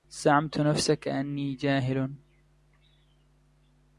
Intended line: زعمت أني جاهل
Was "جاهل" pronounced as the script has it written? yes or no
yes